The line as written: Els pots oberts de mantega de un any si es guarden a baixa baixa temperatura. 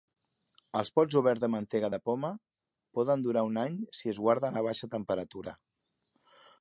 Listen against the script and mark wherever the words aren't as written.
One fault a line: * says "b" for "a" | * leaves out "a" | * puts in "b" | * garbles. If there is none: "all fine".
* puts in "poma poden durar"
* leaves out "baixa"